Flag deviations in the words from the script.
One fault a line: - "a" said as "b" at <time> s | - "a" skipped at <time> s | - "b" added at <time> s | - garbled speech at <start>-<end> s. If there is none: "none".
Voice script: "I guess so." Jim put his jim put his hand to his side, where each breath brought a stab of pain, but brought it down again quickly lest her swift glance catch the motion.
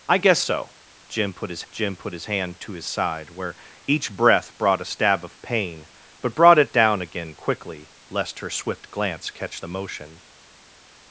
none